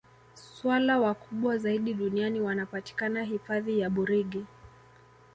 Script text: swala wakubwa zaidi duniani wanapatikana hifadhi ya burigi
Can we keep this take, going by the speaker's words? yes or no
yes